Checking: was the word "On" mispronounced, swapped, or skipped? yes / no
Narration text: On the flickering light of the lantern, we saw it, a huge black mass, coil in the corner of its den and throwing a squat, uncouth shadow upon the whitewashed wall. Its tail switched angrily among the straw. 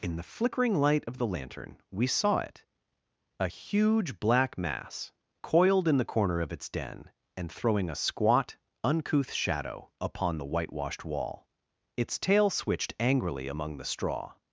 yes